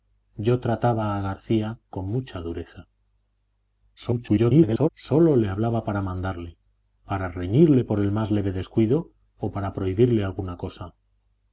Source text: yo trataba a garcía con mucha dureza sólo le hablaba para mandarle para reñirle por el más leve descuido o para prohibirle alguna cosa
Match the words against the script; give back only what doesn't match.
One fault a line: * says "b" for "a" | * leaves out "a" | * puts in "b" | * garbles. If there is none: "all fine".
* garbles